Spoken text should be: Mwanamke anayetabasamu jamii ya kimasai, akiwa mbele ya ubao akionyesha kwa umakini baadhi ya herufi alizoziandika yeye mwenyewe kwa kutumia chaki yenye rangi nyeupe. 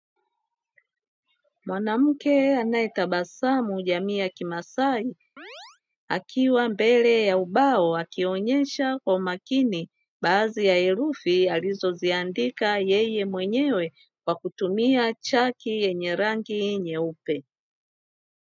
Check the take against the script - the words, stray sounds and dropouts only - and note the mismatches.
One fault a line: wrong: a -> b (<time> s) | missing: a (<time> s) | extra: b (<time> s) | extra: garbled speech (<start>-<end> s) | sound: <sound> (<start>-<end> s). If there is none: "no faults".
sound: chirp (5.4-5.8 s)